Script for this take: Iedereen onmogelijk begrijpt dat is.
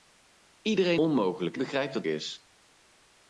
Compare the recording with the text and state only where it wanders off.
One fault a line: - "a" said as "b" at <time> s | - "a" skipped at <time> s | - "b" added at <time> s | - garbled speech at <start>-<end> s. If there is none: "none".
none